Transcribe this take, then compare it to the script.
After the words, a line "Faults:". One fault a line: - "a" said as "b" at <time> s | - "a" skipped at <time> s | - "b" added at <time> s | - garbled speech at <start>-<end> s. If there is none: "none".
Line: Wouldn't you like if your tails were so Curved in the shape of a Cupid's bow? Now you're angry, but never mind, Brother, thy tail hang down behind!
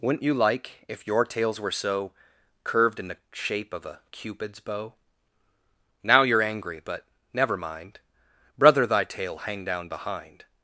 Wouldn't you like if your tails were so Curved in the shape of a Cupid's bow? Now you're angry, but never mind, Brother, thy tail hang down behind!
Faults:
none